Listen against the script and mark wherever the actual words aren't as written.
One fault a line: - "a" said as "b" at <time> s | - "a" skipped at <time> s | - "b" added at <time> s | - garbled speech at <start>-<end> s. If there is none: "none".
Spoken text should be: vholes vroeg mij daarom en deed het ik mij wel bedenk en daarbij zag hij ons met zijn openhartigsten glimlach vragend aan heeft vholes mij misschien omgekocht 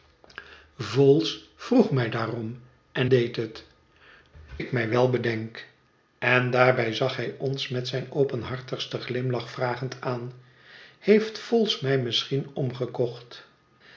none